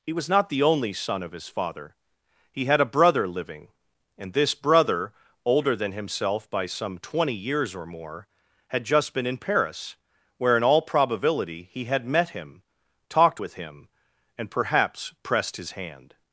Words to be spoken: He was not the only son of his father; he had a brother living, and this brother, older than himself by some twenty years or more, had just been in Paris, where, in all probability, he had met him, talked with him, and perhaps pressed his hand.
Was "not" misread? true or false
false